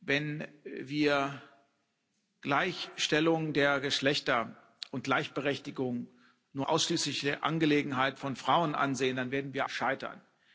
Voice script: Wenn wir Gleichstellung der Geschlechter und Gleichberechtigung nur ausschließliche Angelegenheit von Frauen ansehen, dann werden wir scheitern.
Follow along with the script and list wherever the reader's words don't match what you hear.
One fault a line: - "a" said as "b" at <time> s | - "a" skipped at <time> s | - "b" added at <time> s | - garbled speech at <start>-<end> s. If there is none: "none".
none